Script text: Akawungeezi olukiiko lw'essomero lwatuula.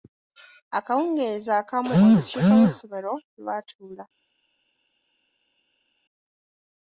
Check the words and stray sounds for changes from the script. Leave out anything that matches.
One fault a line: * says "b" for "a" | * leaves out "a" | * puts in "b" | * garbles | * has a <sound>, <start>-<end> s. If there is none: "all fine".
* puts in "akamu"